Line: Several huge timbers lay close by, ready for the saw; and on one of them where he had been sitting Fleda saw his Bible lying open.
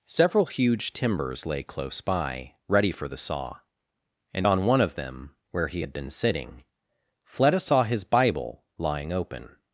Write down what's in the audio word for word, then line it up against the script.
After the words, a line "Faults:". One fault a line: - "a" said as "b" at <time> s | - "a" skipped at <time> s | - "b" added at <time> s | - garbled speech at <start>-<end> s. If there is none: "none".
Several huge timbers lay close by, ready for the saw; and on one of them where he had been sitting Fleda saw his Bible lying open.
Faults:
none